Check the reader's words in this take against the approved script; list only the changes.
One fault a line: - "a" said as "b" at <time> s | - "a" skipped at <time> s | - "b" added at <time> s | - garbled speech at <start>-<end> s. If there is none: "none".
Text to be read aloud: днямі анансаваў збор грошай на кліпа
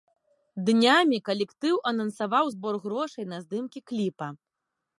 - "калектыў" added at 1.3 s
- "здымкі" added at 3.5 s